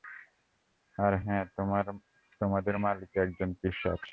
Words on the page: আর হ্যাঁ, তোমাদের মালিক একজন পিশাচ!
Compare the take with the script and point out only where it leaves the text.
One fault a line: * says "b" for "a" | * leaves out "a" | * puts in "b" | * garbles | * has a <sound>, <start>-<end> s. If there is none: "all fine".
all fine